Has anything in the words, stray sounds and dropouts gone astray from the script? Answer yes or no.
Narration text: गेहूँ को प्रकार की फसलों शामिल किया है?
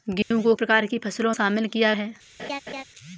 yes